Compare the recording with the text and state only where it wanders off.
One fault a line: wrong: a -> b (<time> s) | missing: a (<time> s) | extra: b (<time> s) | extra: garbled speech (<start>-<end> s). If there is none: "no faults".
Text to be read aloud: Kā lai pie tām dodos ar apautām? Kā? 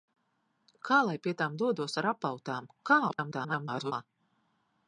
extra: garbled speech (3.1-3.9 s)